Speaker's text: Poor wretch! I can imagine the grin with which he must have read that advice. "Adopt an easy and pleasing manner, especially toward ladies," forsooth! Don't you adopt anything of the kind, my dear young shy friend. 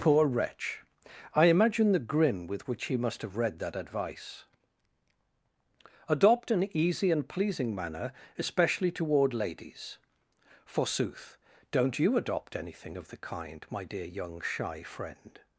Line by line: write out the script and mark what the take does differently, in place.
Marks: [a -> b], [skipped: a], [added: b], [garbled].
Poor wretch! I [skipped: can] imagine the grin with which he must have read that advice. "Adopt an easy and pleasing manner, especially toward ladies," forsooth! Don't you adopt anything of the kind, my dear young shy friend.